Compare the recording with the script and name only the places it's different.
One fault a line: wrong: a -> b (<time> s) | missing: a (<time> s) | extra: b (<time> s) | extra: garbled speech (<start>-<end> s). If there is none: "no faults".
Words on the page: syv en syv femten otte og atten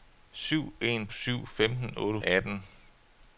no faults